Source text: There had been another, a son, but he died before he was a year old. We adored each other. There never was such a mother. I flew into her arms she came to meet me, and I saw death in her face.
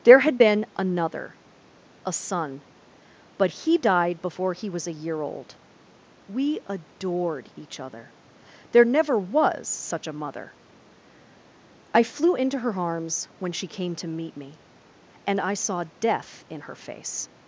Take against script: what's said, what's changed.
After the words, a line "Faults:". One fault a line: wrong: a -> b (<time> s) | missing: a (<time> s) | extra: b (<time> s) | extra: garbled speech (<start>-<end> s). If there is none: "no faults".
There had been another, a son, but he died before he was a year old. We adored each other. There never was such a mother. I flew into her arms when she came to meet me, and I saw death in her face.
Faults:
extra: when (13.4 s)